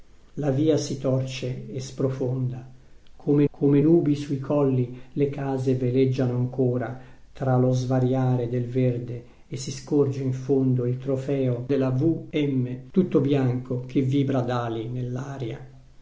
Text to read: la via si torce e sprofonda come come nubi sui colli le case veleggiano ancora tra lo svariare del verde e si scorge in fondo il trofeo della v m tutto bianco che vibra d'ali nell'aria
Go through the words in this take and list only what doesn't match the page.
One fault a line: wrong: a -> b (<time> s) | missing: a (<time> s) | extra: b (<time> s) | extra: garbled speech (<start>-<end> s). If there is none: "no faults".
no faults